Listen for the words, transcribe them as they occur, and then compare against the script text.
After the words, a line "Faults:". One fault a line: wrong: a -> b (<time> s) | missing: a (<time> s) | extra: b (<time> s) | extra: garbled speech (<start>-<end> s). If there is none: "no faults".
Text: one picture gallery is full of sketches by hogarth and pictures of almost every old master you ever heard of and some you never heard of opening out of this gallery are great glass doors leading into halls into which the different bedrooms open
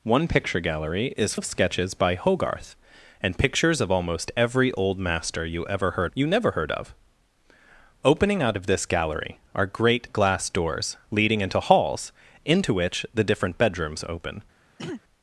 one picture gallery is of sketches by hogarth and pictures of almost every old master you ever heard you never heard of opening out of this gallery are great glass doors leading into halls into which the different bedrooms open
Faults:
missing: full (1.4 s)
missing: of and some (6.1 s)